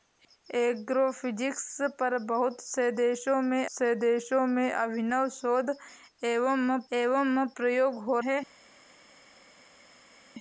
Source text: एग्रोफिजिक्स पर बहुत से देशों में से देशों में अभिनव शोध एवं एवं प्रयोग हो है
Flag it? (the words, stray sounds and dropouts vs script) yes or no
no